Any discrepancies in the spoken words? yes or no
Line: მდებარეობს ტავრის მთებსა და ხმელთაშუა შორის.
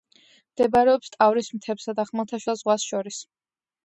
yes